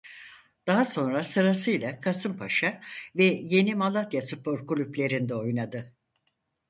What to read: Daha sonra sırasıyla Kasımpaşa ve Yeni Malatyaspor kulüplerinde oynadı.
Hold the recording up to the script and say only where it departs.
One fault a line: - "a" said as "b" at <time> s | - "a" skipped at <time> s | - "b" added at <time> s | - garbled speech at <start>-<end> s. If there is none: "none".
none